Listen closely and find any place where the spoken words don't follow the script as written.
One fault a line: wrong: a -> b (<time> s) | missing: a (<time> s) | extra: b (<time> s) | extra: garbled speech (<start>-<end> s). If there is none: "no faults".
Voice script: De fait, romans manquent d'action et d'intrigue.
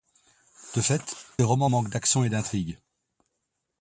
no faults